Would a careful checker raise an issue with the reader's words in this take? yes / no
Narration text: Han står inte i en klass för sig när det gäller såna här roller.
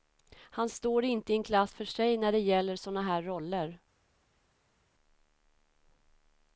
no